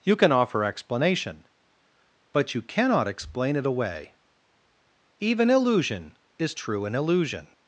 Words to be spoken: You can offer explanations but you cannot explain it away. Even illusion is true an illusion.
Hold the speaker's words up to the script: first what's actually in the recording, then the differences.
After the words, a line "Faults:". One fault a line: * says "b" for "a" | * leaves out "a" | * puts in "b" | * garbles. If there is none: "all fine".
You can offer explanation but you cannot explain it away. Even illusion is true an illusion.
Faults:
* says "explanation" for "explanations"